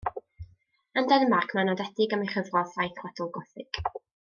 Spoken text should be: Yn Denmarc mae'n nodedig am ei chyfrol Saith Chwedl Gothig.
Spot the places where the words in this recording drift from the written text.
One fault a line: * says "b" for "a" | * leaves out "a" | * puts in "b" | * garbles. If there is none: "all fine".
all fine